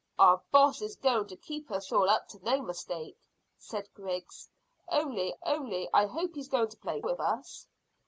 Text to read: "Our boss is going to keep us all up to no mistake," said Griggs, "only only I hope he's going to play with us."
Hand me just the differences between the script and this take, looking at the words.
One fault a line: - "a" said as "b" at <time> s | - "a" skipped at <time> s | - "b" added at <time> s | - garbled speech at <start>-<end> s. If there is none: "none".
none